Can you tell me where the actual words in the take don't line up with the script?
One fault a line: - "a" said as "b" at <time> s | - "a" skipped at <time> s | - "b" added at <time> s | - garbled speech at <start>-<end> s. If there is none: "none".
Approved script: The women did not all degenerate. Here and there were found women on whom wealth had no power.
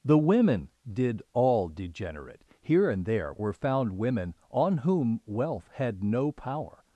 - "not" skipped at 1.2 s